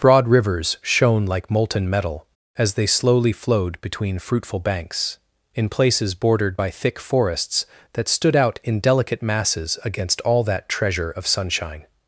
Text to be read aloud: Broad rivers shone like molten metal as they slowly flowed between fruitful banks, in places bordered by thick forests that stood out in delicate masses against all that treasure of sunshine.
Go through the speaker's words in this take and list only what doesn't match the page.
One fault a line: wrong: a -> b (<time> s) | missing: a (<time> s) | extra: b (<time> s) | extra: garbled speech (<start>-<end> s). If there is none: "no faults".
no faults